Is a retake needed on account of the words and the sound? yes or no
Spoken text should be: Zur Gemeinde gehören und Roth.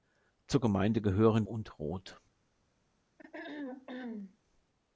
yes